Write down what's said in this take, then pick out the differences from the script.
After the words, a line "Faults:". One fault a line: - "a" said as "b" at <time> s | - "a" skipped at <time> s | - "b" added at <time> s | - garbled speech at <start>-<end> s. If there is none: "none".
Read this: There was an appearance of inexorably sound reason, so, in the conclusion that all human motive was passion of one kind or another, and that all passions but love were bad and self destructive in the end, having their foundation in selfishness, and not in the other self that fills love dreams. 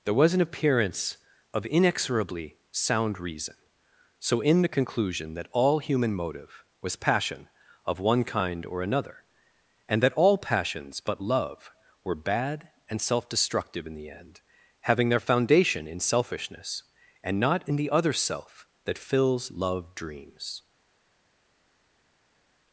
There was an appearance of inexorably sound reason, so, in the conclusion that all human motive was passion of one kind or another, and that all passions but love were bad and self destructive in the end, having their foundation in selfishness, and not in the other self that fills love dreams.
Faults:
none